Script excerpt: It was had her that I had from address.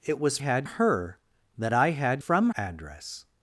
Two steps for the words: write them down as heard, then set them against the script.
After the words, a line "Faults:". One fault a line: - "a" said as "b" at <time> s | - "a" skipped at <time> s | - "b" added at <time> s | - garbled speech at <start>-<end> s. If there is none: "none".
It was had her that I had from address.
Faults:
none